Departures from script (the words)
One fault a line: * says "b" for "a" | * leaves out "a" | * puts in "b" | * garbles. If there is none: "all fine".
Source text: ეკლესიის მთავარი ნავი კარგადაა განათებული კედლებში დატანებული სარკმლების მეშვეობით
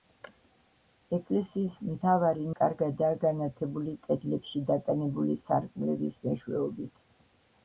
* leaves out "ნავი"